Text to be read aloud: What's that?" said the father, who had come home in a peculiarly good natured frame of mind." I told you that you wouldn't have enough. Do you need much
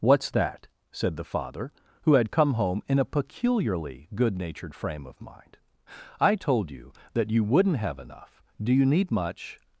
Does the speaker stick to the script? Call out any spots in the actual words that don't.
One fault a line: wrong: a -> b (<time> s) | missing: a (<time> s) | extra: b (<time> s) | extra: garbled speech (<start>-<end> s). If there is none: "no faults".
no faults